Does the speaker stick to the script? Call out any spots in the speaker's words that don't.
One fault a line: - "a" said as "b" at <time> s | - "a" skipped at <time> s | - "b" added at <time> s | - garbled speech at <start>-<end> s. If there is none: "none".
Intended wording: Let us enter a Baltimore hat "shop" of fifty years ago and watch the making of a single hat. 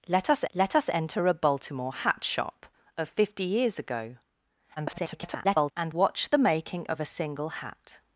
- "let us" added at 0.5 s
- garbled speech at 4.8-5.7 s